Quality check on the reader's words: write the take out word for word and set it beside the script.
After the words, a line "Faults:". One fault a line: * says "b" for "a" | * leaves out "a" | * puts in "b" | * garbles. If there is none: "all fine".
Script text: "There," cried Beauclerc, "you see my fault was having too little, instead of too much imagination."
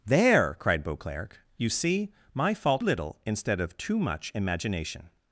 "There," cried Beauclerc, "you see my fault little, instead of too much imagination."
Faults:
* leaves out "was having too"